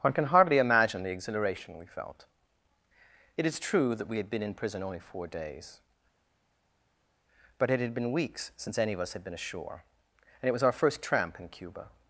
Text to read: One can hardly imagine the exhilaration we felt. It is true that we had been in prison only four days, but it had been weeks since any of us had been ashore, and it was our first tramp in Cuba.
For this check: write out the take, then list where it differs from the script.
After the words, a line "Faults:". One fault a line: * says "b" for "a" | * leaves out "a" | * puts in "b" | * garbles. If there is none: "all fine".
One can hardly imagine the exhilaration we felt. It is true that we had been in prison only four days, but it had been weeks since any of us had been ashore, and it was our first tramp in Cuba.
Faults:
all fine